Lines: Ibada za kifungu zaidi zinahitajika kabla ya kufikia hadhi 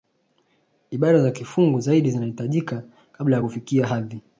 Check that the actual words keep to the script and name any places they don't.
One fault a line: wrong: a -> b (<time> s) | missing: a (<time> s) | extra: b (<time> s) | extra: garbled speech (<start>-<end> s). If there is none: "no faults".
no faults